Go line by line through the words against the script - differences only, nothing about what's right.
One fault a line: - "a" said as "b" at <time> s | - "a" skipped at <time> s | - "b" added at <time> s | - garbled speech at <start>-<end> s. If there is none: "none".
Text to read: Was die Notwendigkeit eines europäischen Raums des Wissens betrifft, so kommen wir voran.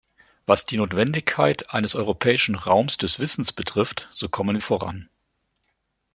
- "wir" skipped at 4.6 s